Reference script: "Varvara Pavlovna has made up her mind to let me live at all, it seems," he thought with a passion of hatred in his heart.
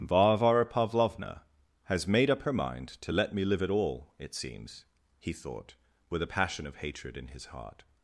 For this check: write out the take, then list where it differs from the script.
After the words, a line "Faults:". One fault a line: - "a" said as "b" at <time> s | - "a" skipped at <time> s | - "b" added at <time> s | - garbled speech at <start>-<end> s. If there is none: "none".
"Varvara Pavlovna has made up her mind to let me live at all, it seems," he thought with a passion of hatred in his heart.
Faults:
none